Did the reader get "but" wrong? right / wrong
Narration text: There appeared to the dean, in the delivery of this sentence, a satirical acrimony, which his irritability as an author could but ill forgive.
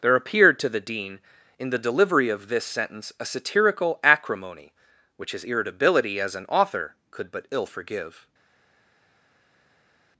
right